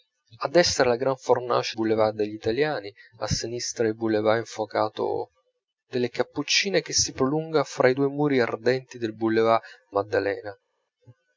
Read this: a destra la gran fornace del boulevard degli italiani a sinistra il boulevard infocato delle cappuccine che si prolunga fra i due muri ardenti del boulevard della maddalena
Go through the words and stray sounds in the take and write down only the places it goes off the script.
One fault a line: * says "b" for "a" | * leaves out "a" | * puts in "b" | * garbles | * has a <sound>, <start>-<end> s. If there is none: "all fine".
* leaves out "del"
* leaves out "della"